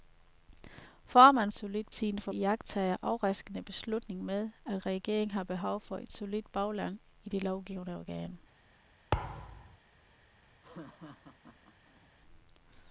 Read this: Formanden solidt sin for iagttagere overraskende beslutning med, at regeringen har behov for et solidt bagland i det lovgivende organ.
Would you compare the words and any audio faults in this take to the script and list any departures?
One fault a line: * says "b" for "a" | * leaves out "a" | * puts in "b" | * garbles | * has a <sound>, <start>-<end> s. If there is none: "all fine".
* has a thud, 9.1-9.8 s
* has a laugh, 10.6-12.1 s